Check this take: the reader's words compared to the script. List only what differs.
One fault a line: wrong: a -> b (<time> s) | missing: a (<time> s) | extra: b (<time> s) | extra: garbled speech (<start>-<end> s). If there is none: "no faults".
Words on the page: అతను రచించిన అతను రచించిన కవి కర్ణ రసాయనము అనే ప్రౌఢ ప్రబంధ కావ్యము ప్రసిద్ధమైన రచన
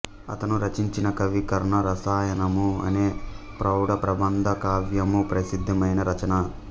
missing: అతను రచించిన (1.1 s)